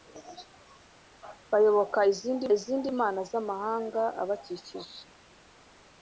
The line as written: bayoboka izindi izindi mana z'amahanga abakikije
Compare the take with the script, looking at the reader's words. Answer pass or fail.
pass